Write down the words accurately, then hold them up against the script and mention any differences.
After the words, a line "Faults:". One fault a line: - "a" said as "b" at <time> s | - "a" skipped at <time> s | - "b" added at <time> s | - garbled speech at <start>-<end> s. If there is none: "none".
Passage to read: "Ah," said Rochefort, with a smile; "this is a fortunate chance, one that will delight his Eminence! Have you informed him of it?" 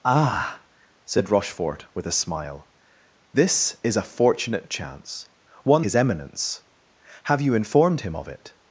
"Ah," said Rochefort, with a smile; "this is a fortunate chance, one his Eminence! Have you informed him of it?"
Faults:
- "that will delight" skipped at 5.8 s